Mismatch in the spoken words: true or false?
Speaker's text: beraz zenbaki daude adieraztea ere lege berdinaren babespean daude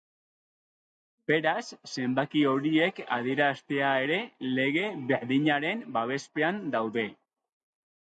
true